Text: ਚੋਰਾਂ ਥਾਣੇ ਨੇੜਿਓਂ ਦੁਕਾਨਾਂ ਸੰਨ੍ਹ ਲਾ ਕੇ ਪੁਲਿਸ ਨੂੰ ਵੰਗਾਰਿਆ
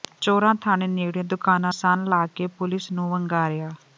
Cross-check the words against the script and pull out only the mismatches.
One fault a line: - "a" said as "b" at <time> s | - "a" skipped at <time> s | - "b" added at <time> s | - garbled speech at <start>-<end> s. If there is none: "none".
none